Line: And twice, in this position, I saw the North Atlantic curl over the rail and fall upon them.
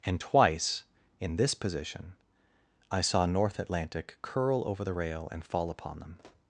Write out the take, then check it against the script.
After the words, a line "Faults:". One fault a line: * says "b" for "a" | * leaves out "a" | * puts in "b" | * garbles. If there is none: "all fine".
And twice, in this position, I saw North Atlantic curl over the rail and fall upon them.
Faults:
* leaves out "the"